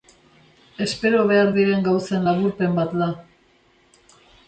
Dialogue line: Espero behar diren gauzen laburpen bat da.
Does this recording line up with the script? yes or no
yes